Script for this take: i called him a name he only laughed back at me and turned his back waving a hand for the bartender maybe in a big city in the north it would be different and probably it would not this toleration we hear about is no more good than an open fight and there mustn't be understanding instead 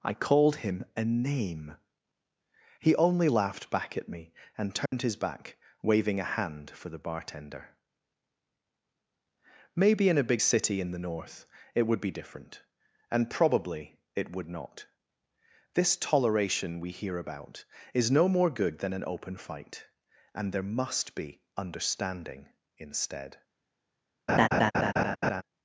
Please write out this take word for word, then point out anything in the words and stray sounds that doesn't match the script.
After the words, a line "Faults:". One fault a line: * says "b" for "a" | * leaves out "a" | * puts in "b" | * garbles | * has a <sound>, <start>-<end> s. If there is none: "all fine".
i called him a name he only laughed back at me and turned his back waving a hand for the bartender maybe in a big city in the north it would be different and probably it would not this toleration we hear about is no more good than an open fight and there must be understanding instead
Faults:
* has a dropout, 4.9-4.9 s
* says "must" for "mustn't"
* has a laugh, 24.3-25.4 s